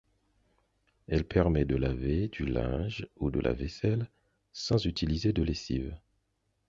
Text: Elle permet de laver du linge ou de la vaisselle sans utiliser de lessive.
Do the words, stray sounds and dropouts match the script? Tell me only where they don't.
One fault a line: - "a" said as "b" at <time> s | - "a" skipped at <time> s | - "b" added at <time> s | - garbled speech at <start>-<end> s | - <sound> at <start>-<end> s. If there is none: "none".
none